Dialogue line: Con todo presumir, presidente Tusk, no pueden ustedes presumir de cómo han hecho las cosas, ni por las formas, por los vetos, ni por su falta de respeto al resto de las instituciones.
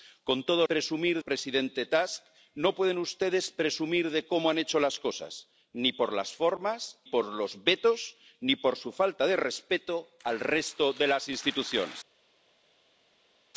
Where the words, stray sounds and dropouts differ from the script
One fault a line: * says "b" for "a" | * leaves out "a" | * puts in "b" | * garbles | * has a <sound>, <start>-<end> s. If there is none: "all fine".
all fine